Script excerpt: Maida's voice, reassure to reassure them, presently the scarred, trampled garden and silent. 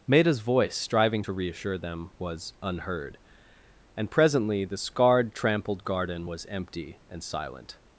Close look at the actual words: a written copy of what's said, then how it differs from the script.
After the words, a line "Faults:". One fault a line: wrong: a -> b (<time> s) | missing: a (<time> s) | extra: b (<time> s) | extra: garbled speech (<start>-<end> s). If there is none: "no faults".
Maida's voice, striving to reassure them, was unheard. And presently the scarred, trampled garden was empty and silent.
Faults:
wrong: reassure -> striving (0.8 s)
extra: was unheard And (2.2 s)
extra: was empty (6.3 s)